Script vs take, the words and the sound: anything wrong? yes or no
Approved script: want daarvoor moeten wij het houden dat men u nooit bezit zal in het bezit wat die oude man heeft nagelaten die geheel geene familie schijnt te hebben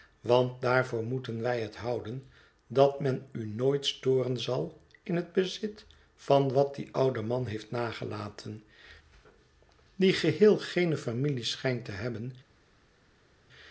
yes